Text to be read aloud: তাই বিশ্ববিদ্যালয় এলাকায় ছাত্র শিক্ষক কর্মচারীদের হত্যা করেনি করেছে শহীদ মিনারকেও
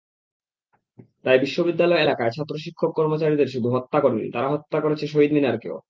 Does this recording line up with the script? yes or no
no